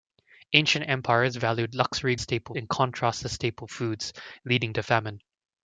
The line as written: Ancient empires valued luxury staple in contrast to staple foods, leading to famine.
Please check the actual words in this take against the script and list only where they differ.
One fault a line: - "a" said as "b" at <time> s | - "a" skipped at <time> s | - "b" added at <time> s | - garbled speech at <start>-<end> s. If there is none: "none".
none